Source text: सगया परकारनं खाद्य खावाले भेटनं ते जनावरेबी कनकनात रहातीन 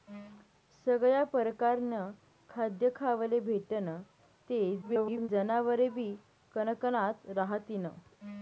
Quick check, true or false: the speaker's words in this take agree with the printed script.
false